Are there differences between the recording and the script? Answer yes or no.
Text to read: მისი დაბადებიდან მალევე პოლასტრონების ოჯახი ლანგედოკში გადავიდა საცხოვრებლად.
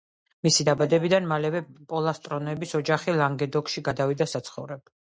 no